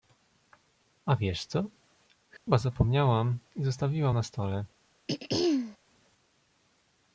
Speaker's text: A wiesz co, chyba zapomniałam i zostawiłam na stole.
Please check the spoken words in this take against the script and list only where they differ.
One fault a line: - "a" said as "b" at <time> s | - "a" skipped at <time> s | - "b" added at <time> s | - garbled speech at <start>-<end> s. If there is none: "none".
none